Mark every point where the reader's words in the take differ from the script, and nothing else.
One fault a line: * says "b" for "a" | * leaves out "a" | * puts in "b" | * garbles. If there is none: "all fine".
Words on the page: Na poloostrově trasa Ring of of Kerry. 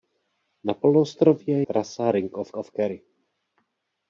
all fine